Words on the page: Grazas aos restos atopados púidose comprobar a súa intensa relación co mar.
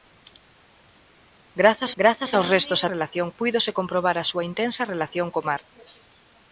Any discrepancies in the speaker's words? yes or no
yes